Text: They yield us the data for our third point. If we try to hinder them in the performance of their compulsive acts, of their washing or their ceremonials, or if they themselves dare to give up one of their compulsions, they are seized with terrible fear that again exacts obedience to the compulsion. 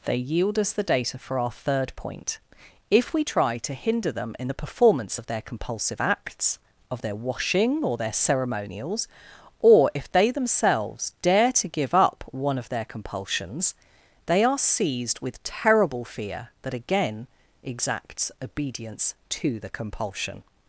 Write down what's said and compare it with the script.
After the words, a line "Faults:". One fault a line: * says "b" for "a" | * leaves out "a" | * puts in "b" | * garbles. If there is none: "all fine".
They yield us the data for our third point. If we try to hinder them in the performance of their compulsive acts, of their washing or their ceremonials, or if they themselves dare to give up one of their compulsions, they are seized with terrible fear that again exacts obedience to the compulsion.
Faults:
all fine